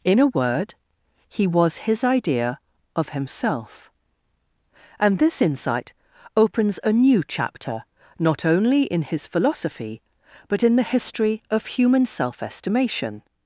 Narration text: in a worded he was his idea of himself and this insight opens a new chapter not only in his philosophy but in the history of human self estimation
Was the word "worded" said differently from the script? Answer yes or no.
yes